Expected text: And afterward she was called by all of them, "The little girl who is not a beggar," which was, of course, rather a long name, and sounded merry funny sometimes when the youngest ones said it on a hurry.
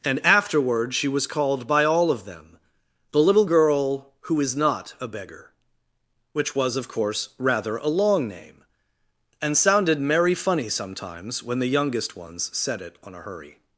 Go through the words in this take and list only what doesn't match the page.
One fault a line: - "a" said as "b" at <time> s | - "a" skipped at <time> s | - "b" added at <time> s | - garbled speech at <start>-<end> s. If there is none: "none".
none